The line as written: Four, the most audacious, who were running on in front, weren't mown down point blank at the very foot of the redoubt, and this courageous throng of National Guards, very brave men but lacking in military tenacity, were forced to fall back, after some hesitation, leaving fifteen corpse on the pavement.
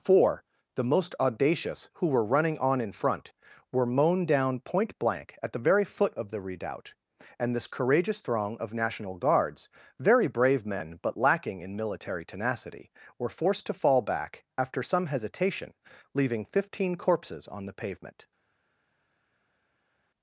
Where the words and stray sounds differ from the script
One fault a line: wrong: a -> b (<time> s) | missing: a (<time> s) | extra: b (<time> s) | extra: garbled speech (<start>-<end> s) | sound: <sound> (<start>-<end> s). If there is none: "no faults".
wrong: weren't -> were (3.7 s)
wrong: corpse -> corpses (17.0 s)